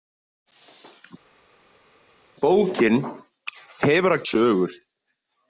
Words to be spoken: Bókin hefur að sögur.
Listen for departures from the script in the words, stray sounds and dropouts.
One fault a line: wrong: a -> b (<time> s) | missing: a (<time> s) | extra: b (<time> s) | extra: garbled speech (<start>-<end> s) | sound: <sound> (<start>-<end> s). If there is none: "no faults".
no faults